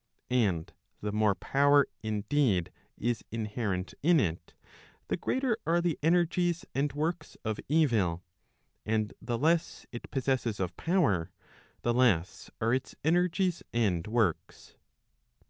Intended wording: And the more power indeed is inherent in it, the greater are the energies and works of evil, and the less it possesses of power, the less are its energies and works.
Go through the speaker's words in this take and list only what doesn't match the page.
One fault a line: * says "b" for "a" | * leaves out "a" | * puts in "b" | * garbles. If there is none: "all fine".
all fine